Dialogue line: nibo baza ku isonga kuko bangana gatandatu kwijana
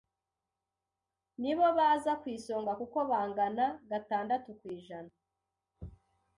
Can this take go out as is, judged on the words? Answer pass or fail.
pass